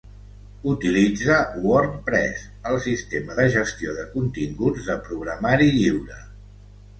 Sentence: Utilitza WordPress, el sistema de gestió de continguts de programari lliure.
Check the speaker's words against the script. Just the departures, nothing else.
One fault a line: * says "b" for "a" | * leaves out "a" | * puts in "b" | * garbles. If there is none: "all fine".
all fine